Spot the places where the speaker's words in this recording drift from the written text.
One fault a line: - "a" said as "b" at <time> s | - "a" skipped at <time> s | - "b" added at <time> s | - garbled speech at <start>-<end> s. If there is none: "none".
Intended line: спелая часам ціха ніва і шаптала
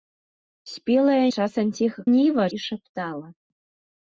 none